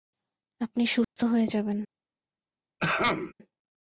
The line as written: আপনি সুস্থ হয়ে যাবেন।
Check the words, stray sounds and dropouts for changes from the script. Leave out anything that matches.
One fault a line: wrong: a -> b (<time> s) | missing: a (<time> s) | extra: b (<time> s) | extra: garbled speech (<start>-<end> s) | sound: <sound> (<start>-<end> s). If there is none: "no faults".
sound: dropout (1.0-1.2 s)
sound: throat clearing (2.8-3.3 s)